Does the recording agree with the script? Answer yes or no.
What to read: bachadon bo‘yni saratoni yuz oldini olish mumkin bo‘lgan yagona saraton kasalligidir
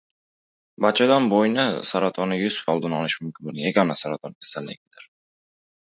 yes